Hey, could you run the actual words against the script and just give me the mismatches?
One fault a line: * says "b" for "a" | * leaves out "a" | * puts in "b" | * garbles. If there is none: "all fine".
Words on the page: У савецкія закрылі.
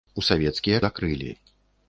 all fine